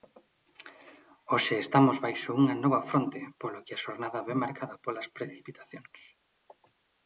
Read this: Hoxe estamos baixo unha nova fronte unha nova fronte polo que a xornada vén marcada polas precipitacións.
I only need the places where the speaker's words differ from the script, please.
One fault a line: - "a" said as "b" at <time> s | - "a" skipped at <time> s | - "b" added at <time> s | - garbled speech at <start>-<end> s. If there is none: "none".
- "unha nova fronte" skipped at 3.2 s